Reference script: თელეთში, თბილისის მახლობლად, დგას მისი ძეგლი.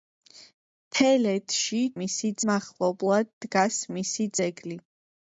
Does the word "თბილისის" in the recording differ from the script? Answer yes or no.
yes